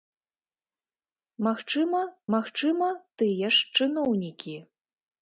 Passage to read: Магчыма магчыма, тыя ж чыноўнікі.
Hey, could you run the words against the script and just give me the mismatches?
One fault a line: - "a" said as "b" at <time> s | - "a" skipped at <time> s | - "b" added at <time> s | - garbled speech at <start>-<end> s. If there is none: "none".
none